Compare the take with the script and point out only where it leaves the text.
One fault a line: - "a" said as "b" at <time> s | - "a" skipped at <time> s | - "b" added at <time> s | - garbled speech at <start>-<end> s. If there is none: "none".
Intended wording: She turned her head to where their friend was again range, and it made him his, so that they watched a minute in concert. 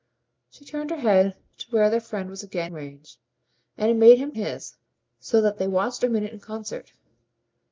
none